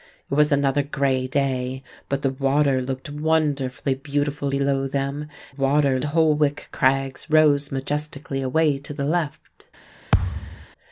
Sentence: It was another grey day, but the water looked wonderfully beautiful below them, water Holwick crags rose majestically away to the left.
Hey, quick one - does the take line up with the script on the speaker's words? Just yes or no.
yes